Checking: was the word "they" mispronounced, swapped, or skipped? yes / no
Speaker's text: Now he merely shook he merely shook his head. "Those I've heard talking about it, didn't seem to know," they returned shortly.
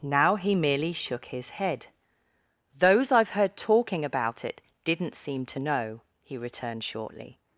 yes